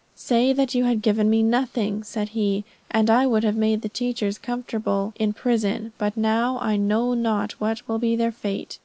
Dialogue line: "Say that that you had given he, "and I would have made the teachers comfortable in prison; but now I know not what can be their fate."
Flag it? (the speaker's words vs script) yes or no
yes